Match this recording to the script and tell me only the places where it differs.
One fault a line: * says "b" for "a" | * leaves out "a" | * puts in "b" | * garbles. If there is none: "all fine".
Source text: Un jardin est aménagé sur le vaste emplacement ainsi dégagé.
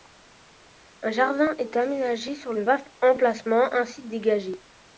all fine